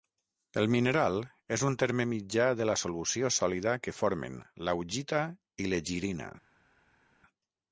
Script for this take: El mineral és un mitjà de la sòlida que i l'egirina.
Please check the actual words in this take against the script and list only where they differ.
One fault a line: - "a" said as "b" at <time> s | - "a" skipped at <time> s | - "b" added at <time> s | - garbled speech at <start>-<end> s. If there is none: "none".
- "terme" added at 1.8 s
- "solució" added at 2.8 s
- "formen l'augita" added at 4.0 s